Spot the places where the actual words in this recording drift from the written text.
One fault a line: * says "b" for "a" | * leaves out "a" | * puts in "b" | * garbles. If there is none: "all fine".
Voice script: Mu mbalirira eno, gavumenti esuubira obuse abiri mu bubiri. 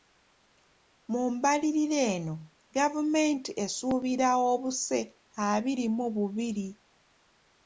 all fine